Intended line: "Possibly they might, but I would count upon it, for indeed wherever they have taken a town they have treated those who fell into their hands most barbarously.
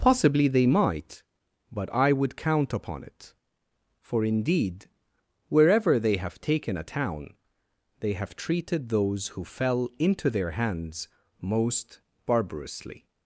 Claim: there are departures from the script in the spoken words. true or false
false